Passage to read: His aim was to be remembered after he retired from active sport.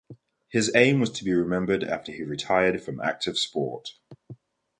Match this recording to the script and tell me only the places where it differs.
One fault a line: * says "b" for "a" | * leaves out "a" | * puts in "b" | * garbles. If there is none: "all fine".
all fine